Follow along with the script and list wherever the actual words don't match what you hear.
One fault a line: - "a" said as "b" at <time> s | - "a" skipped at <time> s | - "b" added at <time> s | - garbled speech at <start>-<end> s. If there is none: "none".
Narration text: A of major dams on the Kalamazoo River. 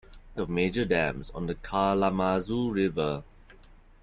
none